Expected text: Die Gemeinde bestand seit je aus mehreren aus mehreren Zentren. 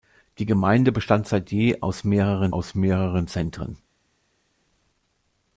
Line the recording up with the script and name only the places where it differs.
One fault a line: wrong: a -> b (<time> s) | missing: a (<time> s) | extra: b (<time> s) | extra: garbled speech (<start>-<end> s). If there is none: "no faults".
no faults